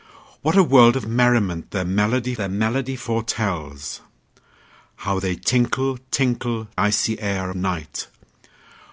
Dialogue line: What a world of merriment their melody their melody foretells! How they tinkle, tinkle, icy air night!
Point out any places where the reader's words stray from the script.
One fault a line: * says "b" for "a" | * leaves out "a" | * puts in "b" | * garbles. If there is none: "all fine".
all fine